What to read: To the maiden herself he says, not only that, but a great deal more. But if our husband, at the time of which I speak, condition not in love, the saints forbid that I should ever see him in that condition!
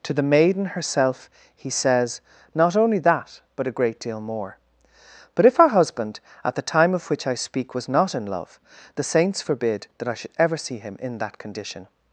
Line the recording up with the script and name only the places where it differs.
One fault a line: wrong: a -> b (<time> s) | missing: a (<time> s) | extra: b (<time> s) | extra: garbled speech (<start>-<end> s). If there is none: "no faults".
wrong: condition -> was (7.7 s)